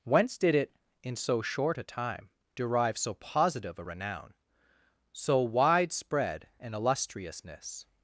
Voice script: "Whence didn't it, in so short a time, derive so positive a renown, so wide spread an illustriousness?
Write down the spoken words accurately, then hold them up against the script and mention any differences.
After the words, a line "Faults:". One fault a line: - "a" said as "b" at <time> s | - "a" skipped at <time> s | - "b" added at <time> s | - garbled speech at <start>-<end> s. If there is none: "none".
"Whence did it, in so short a time, derive so positive a renown, so wide spread an illustriousness?
Faults:
- "didn't" said as "did" at 0.4 s